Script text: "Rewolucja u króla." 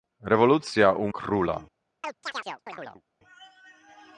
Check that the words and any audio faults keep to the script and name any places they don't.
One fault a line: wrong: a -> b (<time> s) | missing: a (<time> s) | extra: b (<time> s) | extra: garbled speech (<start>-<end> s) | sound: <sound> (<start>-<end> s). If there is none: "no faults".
sound: chirp (2.0-3.0 s)